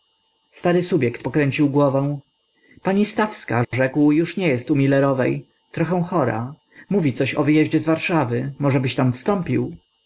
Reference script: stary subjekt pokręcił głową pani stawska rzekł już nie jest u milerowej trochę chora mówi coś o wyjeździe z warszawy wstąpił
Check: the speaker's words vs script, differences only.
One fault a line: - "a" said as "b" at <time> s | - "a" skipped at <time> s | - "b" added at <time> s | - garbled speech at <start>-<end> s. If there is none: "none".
- "możebyś tam" added at 8.6 s